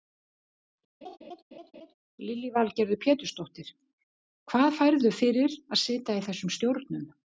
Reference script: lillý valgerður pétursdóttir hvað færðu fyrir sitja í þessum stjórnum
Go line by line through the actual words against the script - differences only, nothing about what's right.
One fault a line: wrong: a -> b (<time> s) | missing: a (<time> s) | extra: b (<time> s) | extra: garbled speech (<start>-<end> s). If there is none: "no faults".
extra: að (5.6 s)